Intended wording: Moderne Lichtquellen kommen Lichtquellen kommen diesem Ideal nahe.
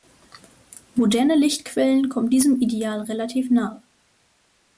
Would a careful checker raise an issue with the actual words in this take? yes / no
yes